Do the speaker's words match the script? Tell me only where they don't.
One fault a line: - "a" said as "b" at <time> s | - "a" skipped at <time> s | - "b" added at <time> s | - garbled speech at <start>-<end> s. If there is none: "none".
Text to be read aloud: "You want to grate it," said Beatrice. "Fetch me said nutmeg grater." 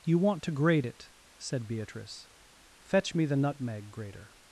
- "said" said as "the" at 3.3 s